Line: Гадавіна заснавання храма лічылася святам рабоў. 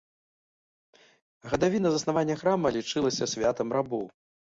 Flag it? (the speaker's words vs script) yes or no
no